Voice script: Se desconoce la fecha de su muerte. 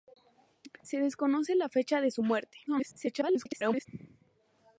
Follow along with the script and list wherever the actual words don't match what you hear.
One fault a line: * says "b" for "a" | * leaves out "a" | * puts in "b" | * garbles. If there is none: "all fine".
* garbles